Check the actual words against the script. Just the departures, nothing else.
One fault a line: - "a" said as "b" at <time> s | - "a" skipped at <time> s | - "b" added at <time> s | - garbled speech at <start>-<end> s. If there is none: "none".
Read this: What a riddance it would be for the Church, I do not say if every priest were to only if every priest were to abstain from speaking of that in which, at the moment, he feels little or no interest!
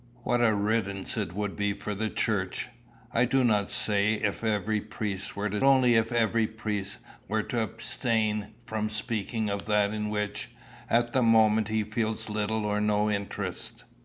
none